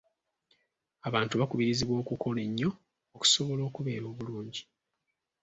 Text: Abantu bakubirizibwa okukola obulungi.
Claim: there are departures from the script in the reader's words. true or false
true